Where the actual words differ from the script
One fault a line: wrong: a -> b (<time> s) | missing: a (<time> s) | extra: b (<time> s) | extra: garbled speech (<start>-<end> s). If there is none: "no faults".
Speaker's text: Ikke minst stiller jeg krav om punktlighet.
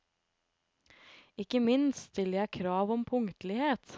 no faults